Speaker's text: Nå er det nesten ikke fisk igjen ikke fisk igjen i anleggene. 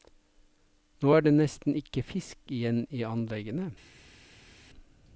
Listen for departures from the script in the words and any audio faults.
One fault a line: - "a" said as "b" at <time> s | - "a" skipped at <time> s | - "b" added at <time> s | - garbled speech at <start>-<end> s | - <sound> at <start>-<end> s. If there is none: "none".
- "ikke fisk igjen" skipped at 2.8 s